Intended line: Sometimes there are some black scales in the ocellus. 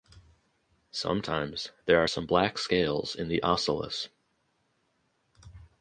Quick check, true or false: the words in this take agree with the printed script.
true